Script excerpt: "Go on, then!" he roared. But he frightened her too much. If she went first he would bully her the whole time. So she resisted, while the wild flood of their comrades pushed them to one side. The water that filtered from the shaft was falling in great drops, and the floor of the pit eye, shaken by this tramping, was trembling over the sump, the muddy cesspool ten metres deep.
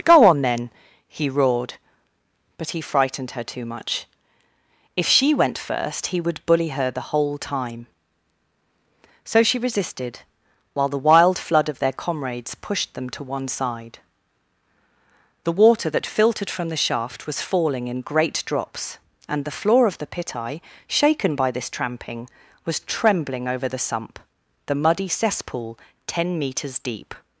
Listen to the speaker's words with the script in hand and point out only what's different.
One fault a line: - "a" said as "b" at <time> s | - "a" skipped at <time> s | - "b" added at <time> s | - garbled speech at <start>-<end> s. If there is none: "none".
none